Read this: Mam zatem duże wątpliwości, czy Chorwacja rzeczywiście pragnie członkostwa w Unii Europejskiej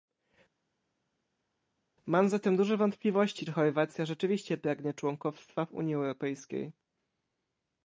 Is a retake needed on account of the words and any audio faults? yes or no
no